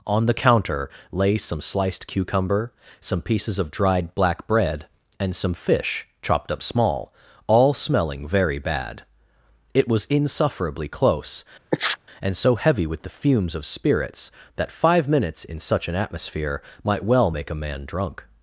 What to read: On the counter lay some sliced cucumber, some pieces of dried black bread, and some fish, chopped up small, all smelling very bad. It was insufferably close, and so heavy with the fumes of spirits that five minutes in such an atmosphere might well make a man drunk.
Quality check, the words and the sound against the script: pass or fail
fail